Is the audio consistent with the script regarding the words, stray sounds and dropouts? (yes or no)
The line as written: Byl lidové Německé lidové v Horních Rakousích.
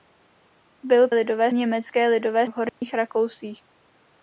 no